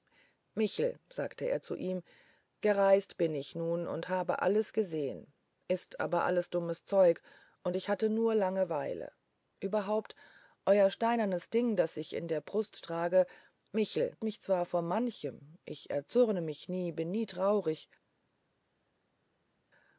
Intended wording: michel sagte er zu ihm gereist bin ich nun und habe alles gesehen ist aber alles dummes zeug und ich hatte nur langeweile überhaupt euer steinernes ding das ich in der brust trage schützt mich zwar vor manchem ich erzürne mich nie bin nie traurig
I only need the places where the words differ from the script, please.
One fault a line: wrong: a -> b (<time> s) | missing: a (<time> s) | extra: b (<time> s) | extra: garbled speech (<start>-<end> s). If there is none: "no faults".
wrong: schützt -> michel (13.7 s)